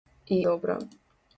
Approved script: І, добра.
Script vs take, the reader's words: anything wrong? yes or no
no